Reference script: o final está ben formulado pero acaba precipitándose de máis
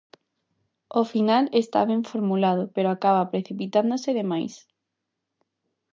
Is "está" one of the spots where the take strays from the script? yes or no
no